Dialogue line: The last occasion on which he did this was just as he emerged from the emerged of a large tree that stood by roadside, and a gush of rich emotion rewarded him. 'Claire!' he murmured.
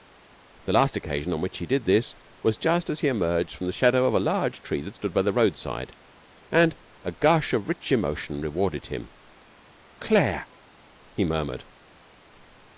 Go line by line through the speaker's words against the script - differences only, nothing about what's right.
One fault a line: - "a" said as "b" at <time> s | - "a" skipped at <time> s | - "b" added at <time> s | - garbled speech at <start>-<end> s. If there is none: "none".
- "emerged" said as "shadow" at 3.7 s
- "the" added at 5.2 s